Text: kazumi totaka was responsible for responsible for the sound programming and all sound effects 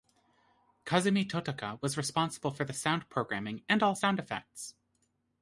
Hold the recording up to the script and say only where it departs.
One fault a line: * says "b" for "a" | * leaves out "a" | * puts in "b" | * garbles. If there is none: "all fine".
* leaves out "responsible for"